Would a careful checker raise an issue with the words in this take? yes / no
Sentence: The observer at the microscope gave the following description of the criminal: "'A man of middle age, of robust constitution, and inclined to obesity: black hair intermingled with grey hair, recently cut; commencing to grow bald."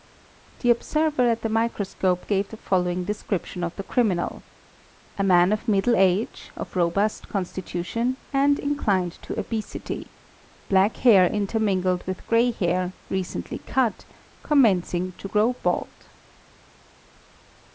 no